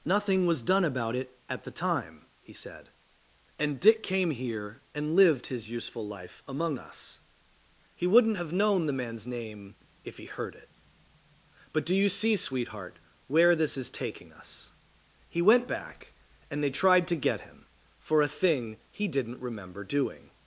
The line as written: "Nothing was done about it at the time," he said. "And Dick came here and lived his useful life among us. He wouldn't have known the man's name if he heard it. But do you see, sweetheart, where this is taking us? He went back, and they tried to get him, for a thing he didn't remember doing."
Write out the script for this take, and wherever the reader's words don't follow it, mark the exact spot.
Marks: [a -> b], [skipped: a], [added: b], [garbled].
"Nothing was done about it at the time," he said. "And Dick came here and lived his useful life among us. He wouldn't have known the man's name if he heard it. But do you see, sweetheart, where this is taking us? He went back, and they tried to get him, for a thing he didn't remember doing."